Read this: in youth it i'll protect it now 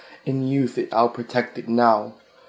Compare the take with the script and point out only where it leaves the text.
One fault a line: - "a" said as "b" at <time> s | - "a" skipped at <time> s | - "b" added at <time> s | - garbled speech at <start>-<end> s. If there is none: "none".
none